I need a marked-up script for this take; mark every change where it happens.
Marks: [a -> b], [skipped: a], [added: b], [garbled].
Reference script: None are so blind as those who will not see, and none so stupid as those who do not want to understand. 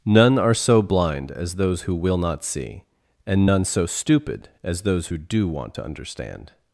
None are so blind as those who will not see, and none so stupid as those who do [skipped: not] want to understand.